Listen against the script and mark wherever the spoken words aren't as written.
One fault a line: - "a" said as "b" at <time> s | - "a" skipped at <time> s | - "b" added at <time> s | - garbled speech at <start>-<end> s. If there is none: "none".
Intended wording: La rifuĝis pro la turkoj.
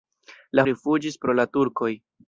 none